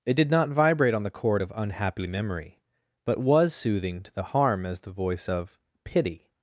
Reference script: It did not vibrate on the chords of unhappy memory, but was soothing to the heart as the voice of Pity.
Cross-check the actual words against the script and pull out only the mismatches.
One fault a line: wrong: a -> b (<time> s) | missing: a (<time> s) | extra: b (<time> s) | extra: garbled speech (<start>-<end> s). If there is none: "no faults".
wrong: chords -> chord (1.1 s)
wrong: heart -> harm (4.2 s)